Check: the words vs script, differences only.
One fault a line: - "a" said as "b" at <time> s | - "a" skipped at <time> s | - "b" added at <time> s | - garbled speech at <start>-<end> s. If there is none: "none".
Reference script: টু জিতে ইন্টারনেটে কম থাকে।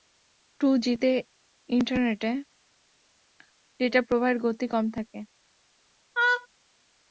- "ডেটা প্রবাহের গতি" added at 3.8 s